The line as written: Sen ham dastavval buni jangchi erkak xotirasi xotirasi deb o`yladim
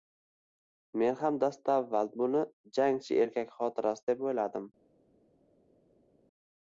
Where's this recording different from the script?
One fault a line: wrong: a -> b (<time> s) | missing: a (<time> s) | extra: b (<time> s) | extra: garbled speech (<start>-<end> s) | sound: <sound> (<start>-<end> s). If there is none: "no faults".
wrong: Sen -> Men (1.0 s)
missing: xotirasi (4.1 s)